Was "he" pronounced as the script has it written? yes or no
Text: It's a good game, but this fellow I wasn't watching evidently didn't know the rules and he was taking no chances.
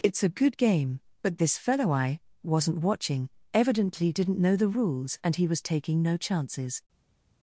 yes